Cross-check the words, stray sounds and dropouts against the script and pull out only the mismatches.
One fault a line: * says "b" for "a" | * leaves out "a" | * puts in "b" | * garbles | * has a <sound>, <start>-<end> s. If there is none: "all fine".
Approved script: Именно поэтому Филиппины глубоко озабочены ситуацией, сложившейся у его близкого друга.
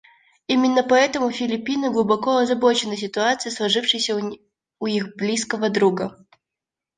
* says "их" for "его"